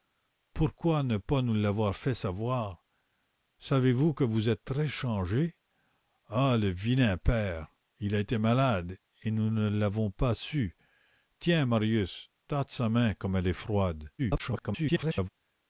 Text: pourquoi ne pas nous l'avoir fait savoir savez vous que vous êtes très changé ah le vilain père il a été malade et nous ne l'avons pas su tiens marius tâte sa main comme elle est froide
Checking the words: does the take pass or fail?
fail